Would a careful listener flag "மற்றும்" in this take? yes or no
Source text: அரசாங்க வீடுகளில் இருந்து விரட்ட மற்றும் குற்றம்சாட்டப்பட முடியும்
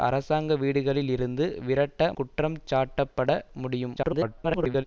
yes